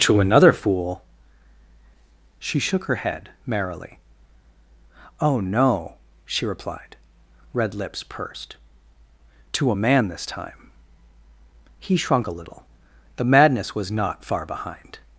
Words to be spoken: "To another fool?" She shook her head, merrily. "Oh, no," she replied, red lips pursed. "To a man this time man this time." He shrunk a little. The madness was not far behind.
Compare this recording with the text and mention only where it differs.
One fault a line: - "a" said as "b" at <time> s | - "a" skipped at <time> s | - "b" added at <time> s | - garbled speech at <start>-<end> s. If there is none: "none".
- "man this time" skipped at 10.7 s